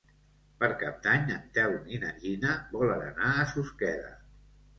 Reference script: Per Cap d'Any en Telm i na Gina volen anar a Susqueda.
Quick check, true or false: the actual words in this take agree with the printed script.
true